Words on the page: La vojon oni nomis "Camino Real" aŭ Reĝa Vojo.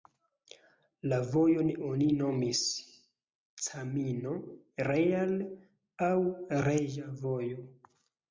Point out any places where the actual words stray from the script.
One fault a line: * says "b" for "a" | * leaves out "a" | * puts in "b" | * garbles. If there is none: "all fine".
all fine